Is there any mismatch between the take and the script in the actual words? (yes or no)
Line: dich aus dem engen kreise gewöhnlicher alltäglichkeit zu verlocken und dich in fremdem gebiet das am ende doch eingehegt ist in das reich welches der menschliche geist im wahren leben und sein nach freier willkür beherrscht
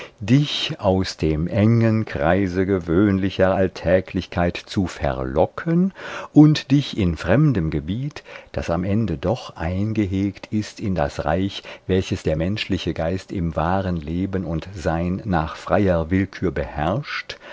no